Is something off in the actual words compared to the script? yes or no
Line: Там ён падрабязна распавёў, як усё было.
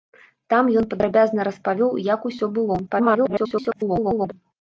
yes